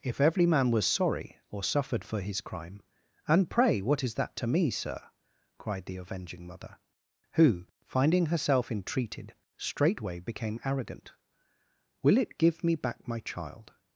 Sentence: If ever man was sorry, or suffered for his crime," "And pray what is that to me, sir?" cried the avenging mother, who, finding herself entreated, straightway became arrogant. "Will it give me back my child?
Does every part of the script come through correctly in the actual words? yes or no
no